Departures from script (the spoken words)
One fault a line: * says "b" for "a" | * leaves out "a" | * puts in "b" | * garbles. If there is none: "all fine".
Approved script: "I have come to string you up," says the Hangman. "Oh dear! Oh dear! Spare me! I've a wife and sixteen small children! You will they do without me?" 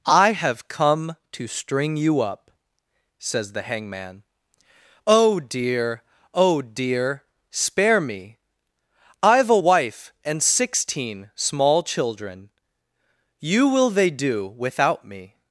all fine